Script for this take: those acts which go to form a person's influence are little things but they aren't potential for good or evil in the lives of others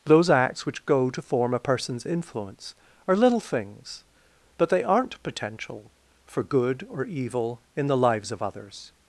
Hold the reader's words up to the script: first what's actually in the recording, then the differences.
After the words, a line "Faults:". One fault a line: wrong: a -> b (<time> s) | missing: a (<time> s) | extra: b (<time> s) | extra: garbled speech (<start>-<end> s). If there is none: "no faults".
those acts which go to form a person's influence are little things but they aren't potential for good or evil in the lives of others
Faults:
no faults